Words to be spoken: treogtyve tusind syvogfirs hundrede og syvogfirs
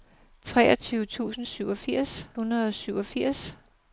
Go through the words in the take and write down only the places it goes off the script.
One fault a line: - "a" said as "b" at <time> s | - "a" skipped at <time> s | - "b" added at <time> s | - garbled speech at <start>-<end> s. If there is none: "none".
none